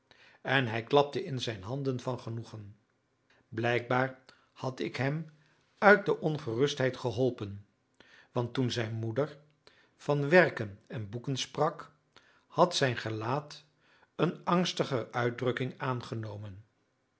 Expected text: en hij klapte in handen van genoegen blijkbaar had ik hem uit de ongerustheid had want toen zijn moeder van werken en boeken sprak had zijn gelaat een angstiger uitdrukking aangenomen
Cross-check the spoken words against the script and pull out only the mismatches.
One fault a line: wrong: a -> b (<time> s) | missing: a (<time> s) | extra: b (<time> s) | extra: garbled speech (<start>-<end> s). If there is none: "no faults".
extra: zijn (1.4 s)
wrong: had -> geholpen (7.0 s)